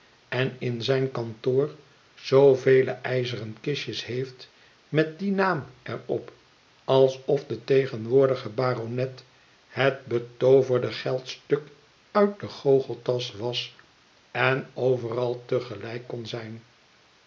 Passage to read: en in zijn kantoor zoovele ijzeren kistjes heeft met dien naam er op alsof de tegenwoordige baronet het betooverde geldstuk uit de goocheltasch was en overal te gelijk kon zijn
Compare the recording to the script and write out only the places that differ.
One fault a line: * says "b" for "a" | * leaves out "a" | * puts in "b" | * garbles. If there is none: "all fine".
all fine